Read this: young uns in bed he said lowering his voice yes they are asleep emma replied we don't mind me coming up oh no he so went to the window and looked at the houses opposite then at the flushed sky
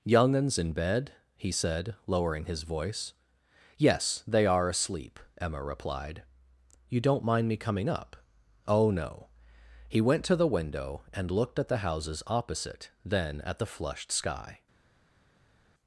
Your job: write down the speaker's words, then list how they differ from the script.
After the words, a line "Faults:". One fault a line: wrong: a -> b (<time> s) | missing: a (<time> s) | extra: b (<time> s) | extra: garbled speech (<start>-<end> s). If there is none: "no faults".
young uns in bed he said lowering his voice yes they are asleep emma replied you don't mind me coming up oh no he went to the window and looked at the houses opposite then at the flushed sky
Faults:
wrong: we -> you (6.9 s)
missing: so (10.0 s)